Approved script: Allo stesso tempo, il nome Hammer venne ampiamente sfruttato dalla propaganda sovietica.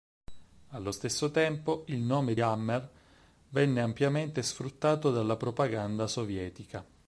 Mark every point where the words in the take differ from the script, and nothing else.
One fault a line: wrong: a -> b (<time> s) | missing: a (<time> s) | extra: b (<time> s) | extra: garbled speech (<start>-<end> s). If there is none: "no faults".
no faults